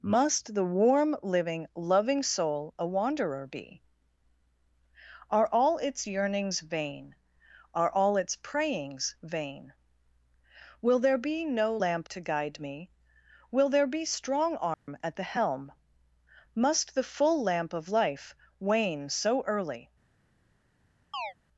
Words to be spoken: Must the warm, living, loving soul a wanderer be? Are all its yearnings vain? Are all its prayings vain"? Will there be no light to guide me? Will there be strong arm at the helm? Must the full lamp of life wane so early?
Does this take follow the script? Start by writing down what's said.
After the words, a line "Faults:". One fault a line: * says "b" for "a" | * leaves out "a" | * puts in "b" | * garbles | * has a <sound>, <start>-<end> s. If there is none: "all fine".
Must the warm, living, loving soul a wanderer be? Are all its yearnings vain? Are all its prayings vain"? Will there be no lamp to guide me? Will there be strong arm at the helm? Must the full lamp of life wane so early?
Faults:
* says "lamp" for "light"
* has a dropout, 14.7-14.9 s
* has a chirp, 21.1-21.3 s